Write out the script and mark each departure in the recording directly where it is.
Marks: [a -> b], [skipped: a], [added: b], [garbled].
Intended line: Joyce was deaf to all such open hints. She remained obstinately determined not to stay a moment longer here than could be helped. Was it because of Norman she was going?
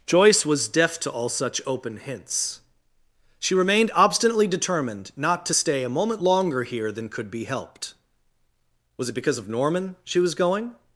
Joyce was deaf to all such open hints. She remained obstinately determined not to stay a moment longer here than could be helped. Was it because of Norman she was going?